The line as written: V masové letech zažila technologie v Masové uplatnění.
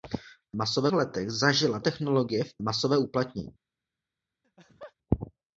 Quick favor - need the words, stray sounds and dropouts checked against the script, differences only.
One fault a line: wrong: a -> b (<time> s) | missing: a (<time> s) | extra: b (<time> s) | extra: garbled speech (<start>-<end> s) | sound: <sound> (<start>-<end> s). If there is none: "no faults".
sound: laugh (4.4-4.9 s)